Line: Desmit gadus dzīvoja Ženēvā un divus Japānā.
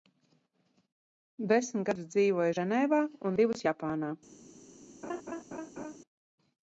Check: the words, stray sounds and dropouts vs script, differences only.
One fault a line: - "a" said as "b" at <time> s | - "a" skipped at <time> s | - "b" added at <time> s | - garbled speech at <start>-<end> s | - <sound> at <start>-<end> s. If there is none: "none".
- laugh at 5.0-6.0 s